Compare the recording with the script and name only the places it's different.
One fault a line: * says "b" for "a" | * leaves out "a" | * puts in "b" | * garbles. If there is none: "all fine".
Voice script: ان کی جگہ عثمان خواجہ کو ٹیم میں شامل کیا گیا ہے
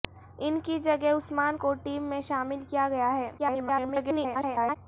* leaves out "خواجہ"
* garbles